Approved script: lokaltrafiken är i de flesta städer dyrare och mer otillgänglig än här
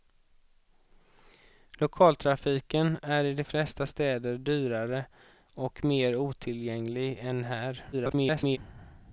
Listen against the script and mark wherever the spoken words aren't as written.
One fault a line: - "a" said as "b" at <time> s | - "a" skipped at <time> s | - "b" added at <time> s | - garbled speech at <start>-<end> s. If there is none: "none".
- garbled speech at 7.9-8.6 s